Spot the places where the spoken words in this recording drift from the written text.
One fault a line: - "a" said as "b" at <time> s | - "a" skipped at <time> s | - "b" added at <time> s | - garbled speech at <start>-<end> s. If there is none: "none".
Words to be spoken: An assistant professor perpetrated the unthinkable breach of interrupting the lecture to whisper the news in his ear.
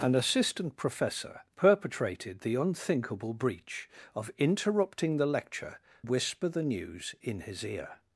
- "to" skipped at 5.8 s